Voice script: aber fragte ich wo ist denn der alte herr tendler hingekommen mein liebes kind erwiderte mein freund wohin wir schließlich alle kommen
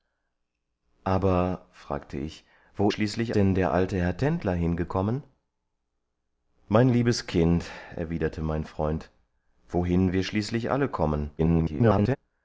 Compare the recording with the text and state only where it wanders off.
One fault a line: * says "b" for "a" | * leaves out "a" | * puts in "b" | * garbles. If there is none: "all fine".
* says "schließlich" for "ist"
* garbles